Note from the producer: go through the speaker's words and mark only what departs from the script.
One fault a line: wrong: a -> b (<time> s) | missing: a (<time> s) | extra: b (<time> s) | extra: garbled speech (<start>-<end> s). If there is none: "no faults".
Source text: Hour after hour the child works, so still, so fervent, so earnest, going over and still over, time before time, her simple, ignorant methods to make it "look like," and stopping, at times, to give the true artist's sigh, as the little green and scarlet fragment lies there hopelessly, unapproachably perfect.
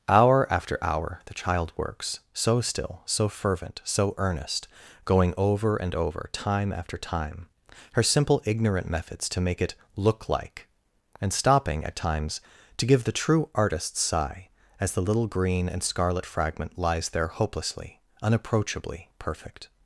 missing: still (5.9 s)
wrong: before -> after (6.7 s)